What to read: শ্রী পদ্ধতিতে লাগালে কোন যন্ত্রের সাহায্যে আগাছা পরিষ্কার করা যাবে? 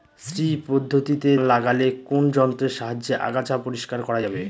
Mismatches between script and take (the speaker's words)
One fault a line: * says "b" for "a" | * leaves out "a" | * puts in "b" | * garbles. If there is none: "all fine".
all fine